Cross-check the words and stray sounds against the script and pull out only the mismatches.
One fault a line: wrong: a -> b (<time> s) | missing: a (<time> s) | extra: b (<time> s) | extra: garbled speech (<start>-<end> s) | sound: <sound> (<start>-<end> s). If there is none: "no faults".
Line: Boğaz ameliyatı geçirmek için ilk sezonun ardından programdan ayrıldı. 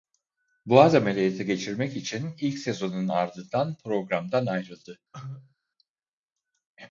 sound: cough (5.1-5.5 s)